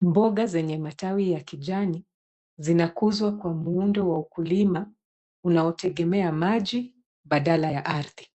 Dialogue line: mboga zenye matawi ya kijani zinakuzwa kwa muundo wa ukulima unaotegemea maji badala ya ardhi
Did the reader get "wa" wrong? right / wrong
right